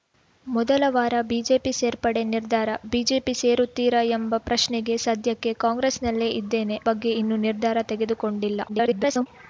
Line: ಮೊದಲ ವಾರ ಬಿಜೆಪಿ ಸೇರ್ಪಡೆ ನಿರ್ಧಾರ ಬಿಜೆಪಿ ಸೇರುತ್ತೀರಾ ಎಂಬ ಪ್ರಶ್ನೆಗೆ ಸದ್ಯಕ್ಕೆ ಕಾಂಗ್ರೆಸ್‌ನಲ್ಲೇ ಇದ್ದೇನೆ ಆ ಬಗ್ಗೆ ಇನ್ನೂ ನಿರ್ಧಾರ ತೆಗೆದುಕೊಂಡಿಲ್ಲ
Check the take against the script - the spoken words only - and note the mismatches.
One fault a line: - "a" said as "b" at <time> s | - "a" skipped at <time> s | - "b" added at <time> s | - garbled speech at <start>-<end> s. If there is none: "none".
- "ಆ" skipped at 6.8 s
- garbled speech at 8.7-9.3 s